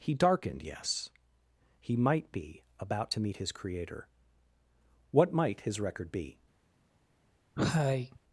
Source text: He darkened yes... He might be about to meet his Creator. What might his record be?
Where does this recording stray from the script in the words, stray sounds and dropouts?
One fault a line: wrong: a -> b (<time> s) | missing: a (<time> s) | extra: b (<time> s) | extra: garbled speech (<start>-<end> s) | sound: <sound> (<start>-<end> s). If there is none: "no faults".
sound: cough (7.6-8.2 s)